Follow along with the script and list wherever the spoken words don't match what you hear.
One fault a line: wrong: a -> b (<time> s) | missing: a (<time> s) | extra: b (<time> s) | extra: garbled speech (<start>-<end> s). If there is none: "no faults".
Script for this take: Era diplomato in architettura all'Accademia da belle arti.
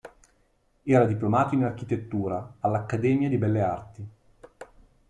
wrong: da -> di (3.3 s)